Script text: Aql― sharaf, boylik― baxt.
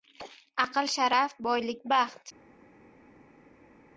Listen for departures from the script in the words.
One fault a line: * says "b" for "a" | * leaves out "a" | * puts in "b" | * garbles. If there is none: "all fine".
all fine